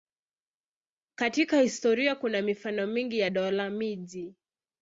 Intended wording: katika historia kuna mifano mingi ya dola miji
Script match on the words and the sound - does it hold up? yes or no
yes